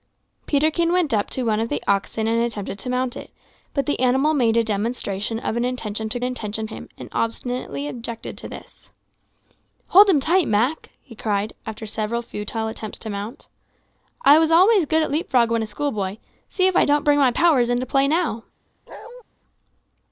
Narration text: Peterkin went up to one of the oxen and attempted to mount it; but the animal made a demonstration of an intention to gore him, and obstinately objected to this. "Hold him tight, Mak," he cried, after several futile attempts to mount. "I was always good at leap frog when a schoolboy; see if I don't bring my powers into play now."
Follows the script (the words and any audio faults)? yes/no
no